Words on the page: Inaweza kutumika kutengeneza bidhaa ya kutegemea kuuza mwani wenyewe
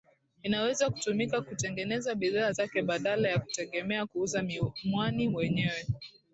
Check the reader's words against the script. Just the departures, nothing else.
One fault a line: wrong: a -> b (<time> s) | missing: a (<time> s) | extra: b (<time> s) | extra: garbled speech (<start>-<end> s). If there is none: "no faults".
extra: zake badala (2.5 s)